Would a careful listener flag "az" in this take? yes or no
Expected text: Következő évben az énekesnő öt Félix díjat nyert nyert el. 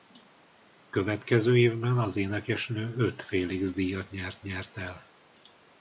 no